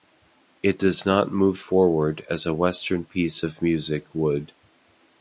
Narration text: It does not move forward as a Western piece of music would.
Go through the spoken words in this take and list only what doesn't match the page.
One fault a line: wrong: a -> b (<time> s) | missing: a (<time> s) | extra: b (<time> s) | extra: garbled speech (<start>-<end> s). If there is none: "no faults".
no faults